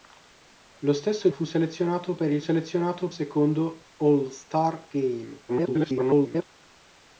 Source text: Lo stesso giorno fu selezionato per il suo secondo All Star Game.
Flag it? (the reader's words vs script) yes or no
yes